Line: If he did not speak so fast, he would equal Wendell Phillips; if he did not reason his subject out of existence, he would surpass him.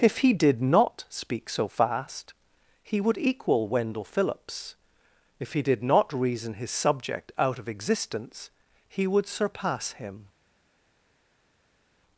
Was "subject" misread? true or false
false